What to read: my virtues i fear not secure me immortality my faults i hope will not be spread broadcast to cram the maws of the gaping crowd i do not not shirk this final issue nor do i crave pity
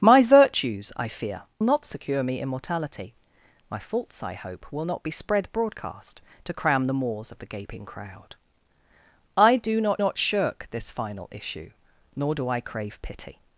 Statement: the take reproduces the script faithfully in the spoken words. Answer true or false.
true